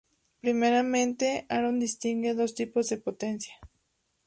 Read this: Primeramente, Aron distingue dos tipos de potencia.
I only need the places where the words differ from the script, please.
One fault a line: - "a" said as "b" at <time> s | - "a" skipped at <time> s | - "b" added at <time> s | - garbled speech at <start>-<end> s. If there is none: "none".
none